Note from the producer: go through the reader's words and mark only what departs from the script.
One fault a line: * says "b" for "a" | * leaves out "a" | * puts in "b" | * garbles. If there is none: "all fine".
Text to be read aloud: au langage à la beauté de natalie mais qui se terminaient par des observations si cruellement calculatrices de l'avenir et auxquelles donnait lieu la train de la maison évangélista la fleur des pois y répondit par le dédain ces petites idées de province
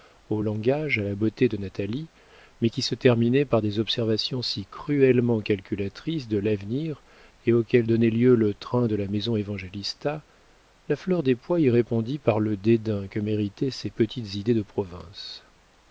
* says "le" for "la"
* puts in "que méritaient"